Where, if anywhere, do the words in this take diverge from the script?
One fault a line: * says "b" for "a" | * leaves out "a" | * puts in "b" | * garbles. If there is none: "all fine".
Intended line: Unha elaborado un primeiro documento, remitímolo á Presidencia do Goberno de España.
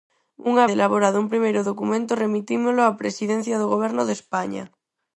all fine